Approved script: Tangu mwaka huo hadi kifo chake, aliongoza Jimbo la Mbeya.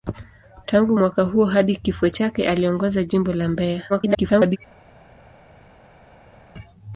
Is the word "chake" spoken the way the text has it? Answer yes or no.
yes